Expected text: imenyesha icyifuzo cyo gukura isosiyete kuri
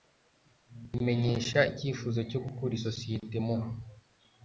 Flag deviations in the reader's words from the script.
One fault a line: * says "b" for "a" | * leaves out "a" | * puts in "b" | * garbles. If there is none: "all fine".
* says "mu" for "kuri"